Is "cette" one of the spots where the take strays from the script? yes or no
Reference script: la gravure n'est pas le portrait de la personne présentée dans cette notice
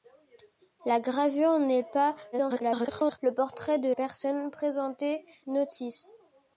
yes